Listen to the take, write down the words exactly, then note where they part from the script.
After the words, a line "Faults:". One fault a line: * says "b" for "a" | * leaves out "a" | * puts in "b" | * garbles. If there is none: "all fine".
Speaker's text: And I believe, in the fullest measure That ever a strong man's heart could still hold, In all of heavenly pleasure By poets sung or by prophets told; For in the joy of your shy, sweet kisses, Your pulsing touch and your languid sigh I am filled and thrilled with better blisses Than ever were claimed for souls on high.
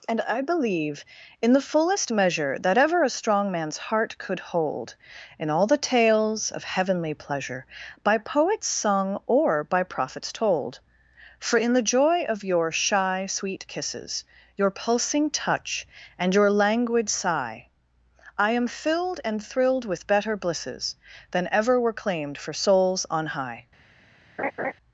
And I believe, in the fullest measure That ever a strong man's heart could hold, In all the tales of heavenly pleasure By poets sung or by prophets told; For in the joy of your shy, sweet kisses, Your pulsing touch and your languid sigh I am filled and thrilled with better blisses Than ever were claimed for souls on high.
Faults:
* leaves out "still"
* puts in "the tales"